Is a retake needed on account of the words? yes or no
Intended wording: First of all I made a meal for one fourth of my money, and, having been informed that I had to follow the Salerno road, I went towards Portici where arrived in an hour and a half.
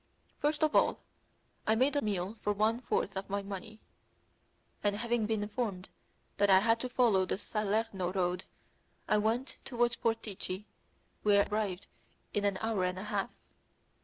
no